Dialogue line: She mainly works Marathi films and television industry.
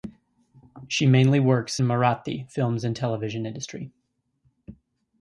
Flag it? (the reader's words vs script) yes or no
no